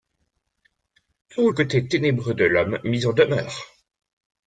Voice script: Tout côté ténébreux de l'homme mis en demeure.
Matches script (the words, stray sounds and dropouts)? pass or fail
pass